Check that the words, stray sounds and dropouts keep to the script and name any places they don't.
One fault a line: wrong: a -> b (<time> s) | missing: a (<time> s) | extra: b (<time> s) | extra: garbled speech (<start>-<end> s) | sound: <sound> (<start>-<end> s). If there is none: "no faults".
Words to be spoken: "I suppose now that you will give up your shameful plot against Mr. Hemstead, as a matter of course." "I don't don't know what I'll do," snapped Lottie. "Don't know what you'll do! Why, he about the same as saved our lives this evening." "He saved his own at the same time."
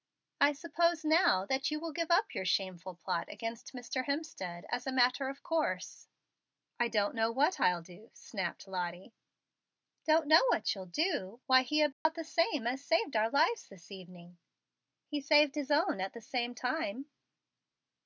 missing: don't (7.1 s)
sound: dropout (11.9-12.1 s)